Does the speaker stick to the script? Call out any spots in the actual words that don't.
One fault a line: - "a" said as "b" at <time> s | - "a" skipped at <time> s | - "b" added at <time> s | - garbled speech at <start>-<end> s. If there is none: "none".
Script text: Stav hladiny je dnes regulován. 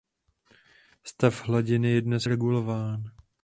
none